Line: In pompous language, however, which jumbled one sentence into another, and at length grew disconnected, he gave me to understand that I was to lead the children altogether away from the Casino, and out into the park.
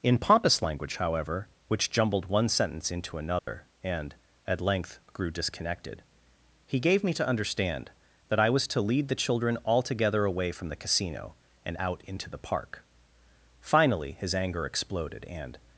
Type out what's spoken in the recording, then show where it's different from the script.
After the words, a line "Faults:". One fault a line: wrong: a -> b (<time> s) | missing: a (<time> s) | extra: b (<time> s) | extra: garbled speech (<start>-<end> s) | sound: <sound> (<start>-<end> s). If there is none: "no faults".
In pompous language, however, which jumbled one sentence into another, and at length grew disconnected, he gave me to understand that I was to lead the children altogether away from the Casino, and out into the park. Finally his anger exploded, and
Faults:
sound: dropout (3.4-3.5 s)
extra: Finally his anger exploded and (13.6 s)